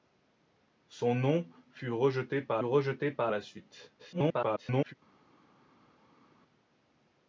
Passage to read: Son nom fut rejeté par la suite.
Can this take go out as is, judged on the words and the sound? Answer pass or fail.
fail